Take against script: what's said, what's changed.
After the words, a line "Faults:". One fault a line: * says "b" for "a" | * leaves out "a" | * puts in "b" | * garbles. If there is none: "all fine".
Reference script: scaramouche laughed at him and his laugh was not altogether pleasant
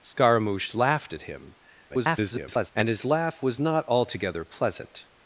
scaramouche laughed at him [garbled] and his laugh was not altogether pleasant
Faults:
* garbles